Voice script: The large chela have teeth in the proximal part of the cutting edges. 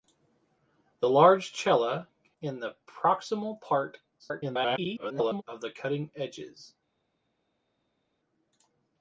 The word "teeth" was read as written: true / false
false